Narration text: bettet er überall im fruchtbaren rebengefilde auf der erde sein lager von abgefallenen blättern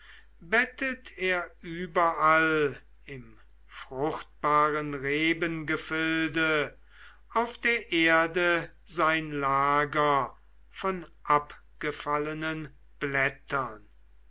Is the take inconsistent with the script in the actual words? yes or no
no